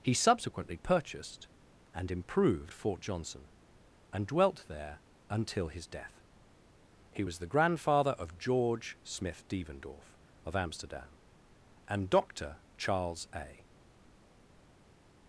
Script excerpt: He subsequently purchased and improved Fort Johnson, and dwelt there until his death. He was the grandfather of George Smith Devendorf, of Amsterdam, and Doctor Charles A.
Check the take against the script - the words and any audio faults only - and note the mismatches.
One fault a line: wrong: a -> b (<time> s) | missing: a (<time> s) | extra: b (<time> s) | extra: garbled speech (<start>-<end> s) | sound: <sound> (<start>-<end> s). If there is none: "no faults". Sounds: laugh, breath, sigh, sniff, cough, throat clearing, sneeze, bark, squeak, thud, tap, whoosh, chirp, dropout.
no faults